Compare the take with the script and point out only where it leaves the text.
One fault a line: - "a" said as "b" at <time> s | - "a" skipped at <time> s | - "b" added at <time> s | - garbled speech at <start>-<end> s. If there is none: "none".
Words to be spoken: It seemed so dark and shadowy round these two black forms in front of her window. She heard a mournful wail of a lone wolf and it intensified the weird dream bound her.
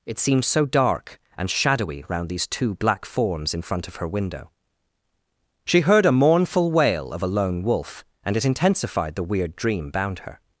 none